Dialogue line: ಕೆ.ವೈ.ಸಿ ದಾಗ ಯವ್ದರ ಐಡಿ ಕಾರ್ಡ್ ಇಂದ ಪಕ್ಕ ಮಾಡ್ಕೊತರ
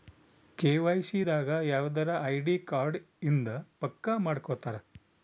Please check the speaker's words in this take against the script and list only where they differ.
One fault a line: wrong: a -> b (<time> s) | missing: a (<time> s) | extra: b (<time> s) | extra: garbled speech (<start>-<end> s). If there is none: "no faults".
no faults